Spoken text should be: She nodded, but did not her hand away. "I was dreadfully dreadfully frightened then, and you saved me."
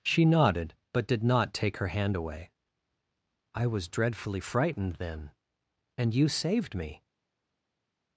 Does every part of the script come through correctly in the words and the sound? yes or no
no